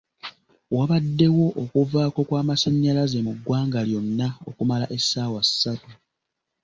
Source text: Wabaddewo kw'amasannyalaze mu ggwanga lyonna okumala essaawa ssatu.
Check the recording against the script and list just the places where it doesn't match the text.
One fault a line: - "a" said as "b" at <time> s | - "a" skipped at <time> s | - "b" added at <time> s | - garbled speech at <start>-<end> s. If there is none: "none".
- "okuvaako" added at 1.6 s